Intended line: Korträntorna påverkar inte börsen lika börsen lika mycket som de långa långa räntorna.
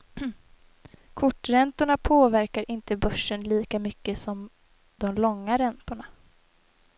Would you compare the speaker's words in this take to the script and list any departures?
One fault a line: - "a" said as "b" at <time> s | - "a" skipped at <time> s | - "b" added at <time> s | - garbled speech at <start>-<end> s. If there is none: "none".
- "börsen lika" skipped at 3.8 s
- "långa" skipped at 5.6 s